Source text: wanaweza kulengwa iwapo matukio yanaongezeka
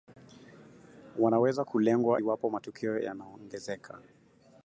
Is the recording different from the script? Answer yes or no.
no